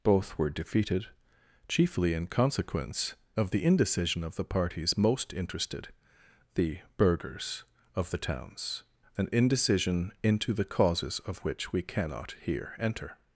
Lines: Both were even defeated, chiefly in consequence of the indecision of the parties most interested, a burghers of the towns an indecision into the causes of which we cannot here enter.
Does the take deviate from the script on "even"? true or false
true